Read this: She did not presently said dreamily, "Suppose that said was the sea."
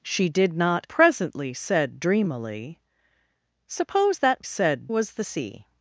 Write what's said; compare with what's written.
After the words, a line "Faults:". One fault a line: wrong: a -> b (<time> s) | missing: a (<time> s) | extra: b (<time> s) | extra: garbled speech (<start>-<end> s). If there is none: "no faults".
She did not presently said dreamily, "Suppose that said was the sea."
Faults:
no faults